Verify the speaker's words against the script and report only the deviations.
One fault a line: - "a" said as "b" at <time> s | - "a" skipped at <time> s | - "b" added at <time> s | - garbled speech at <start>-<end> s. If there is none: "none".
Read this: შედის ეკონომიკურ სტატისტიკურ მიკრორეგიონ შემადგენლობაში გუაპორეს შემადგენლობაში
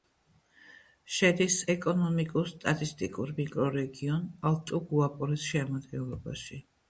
- "შემადგენლობაში" said as "ალტუ" at 4.5 s